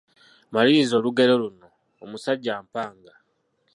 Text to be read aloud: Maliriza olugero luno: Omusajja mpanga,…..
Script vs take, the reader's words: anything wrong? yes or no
no